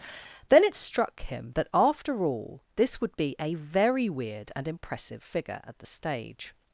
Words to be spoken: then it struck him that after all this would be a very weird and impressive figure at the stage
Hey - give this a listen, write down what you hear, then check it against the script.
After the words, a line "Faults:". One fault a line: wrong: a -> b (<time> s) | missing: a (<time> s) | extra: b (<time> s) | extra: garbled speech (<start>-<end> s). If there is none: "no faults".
then it struck him that after all this would be a very weird and impressive figure at the stage
Faults:
no faults